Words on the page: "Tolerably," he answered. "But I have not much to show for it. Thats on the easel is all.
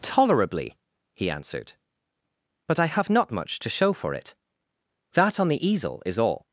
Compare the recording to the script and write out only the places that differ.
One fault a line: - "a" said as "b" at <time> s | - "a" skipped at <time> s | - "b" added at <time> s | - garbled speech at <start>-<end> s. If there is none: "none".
- "Thats" said as "That" at 5.1 s